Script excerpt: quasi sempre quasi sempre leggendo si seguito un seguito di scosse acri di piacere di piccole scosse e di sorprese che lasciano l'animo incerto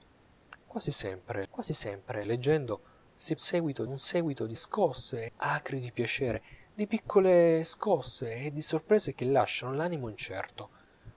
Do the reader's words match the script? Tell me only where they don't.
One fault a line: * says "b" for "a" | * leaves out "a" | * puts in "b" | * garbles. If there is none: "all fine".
all fine